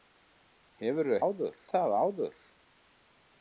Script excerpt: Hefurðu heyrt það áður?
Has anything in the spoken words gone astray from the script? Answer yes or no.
yes